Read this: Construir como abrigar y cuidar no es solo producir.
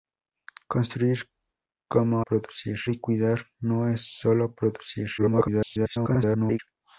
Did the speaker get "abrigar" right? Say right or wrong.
wrong